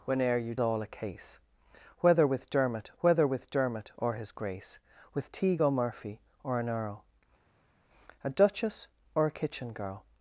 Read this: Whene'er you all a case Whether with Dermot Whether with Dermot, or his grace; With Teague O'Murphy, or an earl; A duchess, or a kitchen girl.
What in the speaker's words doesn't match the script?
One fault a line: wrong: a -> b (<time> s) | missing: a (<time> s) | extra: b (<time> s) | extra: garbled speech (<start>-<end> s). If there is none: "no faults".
no faults